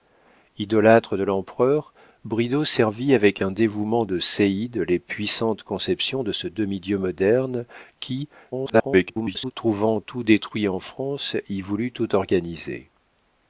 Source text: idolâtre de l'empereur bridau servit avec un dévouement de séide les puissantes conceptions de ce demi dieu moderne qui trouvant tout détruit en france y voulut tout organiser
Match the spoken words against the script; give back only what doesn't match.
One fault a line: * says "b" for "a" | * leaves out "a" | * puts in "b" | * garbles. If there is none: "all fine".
* garbles